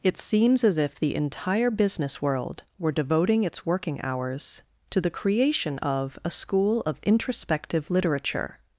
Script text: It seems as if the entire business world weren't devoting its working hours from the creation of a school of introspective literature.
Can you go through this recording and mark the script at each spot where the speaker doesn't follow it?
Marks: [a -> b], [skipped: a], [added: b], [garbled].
It seems as if the entire business world [weren't -> were] devoting its working hours [from -> to] the creation of a school of introspective literature.